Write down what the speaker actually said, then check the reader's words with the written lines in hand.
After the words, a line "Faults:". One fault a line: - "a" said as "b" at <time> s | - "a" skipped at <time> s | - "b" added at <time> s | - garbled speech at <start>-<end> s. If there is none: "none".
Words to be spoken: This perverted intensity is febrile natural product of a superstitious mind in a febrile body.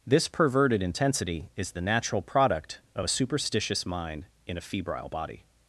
This perverted intensity is the natural product of a superstitious mind in a febrile body.
Faults:
- "febrile" said as "the" at 1.7 s